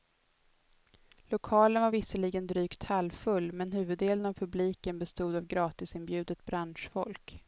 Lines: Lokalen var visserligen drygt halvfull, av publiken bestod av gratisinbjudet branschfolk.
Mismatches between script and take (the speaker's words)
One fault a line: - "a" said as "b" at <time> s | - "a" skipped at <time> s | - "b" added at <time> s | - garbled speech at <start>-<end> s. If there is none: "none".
- "men huvuddelen" added at 3.5 s